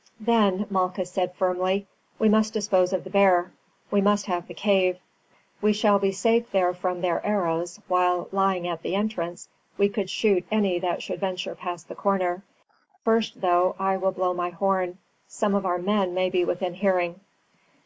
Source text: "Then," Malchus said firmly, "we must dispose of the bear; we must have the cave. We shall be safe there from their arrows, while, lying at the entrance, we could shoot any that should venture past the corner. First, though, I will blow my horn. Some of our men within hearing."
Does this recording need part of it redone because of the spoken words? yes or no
yes